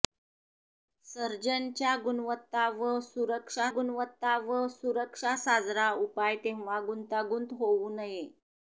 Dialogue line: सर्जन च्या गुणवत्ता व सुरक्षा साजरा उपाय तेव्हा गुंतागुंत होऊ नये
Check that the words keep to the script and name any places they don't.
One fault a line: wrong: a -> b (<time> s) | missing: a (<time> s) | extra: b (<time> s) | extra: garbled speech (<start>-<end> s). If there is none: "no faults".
extra: गुणवत्ता व सुरक्षा (3.7 s)